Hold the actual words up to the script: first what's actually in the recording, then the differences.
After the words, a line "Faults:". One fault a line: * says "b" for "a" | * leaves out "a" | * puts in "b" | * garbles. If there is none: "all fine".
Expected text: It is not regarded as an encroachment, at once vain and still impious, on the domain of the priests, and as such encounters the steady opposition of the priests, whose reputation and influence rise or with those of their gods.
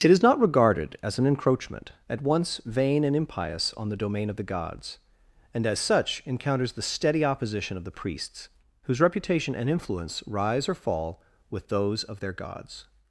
It is not regarded as an encroachment, at once vain and impious, on the domain of the gods, and as such encounters the steady opposition of the priests, whose reputation and influence rise or fall with those of their gods.
Faults:
* leaves out "still"
* says "gods" for "priests"
* puts in "fall"